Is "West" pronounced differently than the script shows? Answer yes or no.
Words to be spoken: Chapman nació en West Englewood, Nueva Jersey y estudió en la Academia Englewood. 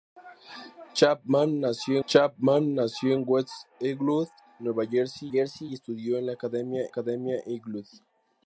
no